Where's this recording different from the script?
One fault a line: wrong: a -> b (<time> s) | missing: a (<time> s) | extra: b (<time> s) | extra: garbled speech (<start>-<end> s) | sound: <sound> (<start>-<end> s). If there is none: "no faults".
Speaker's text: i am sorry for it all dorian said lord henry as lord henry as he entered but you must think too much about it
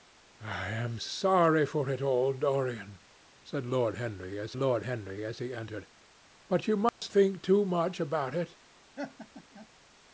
sound: dropout (6.9-7.0 s)
sound: laugh (8.9-9.7 s)